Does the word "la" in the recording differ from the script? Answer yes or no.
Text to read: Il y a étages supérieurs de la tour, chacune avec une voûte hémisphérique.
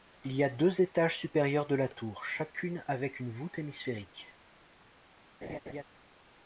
no